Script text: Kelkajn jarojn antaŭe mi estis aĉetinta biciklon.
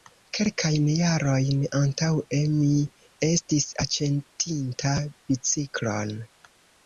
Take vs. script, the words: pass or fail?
pass